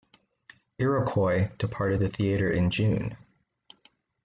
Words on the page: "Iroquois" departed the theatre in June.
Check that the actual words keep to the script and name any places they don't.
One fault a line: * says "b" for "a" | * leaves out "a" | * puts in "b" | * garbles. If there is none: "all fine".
all fine